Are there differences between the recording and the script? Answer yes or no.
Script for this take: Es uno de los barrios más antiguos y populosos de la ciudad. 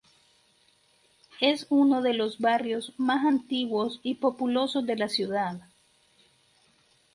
no